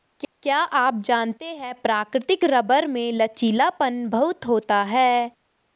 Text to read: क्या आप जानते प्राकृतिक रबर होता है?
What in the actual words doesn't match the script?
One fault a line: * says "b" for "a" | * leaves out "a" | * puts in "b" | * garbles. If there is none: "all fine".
* puts in "है"
* puts in "में लचीलापन बहुत"